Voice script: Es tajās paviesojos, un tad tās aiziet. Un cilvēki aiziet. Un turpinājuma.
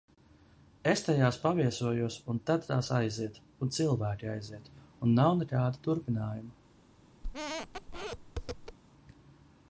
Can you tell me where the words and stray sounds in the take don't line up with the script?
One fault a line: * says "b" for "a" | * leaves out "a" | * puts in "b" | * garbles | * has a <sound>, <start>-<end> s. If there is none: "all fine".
* puts in "nav nekāda"
* has a squeak, 7.2-8.8 s